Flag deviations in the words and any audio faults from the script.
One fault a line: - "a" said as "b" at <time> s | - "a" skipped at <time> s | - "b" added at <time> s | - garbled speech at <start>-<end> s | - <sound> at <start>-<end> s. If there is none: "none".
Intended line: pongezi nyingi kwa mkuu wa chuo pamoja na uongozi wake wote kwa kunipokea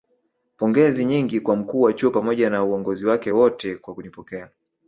none